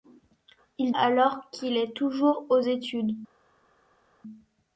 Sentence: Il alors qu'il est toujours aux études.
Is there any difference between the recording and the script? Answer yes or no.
no